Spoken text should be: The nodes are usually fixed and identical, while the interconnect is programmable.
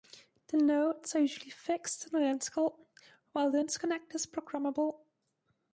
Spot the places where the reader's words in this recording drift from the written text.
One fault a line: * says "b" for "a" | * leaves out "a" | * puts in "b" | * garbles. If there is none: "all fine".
all fine